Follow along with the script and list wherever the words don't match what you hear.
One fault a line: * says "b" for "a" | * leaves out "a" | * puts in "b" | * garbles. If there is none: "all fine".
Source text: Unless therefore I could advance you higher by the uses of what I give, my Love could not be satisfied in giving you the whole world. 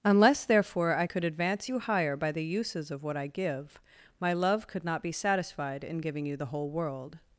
all fine